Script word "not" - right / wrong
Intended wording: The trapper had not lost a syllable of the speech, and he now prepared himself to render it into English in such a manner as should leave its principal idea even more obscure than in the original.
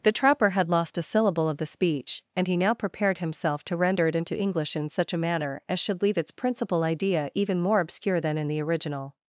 wrong